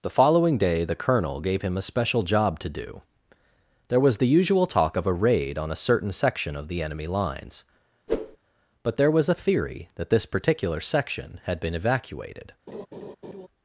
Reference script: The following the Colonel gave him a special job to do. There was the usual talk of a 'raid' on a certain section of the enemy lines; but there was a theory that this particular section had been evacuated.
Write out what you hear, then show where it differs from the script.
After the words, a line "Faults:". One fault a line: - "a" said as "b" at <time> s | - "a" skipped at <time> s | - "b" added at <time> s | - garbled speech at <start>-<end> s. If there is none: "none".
The following day the Colonel gave him a special job to do. There was the usual talk of a 'raid' on a certain section of the enemy lines; but there was a theory that this particular section had been evacuated.
Faults:
- "day" added at 0.6 s